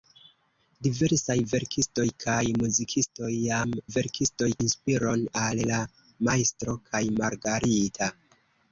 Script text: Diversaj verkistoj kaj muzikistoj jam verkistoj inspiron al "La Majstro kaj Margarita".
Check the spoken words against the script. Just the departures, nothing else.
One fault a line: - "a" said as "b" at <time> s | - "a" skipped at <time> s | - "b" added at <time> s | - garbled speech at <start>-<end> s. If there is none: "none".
none